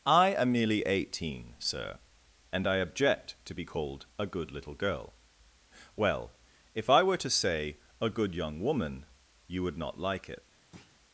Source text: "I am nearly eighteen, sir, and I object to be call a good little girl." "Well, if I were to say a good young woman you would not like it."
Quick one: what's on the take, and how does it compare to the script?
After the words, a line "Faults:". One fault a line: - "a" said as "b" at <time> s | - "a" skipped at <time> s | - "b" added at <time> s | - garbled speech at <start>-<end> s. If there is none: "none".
"I am nearly eighteen, sir, and I object to be called a good little girl." "Well, if I were to say a good young woman you would not like it."
Faults:
- "call" said as "called" at 3.6 s